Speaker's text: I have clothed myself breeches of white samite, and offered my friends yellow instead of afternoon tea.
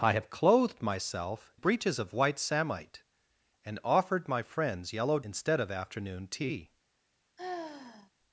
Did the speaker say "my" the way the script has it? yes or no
yes